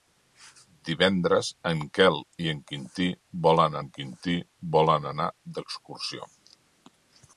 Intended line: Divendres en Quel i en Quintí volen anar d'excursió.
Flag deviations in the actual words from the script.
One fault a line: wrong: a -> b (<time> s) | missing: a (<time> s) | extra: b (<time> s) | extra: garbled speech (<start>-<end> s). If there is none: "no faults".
extra: en Quintí volen (3.8 s)